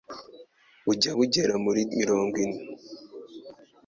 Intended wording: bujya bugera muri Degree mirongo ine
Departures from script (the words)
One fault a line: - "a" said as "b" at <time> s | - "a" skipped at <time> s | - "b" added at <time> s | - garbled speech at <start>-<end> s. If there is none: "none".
- "Degree" skipped at 1.8 s